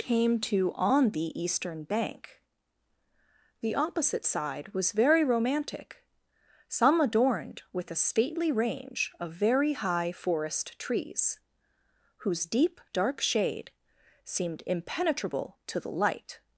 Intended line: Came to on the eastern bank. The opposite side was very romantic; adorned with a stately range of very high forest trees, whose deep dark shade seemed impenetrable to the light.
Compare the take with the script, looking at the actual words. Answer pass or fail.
fail